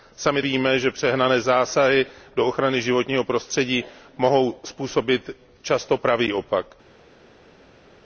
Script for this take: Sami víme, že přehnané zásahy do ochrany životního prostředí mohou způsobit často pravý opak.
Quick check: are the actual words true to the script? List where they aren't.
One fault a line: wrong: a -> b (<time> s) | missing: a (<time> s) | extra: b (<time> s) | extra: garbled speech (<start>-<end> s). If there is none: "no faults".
no faults